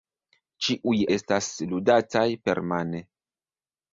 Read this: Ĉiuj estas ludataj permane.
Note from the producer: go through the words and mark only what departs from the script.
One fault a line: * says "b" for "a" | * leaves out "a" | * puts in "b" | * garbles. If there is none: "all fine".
all fine